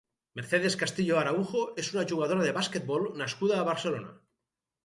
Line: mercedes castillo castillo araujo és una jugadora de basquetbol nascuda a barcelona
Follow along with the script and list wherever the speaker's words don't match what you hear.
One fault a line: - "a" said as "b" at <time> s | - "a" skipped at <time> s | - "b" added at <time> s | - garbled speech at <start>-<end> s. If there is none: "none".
- "castillo" skipped at 1.2 s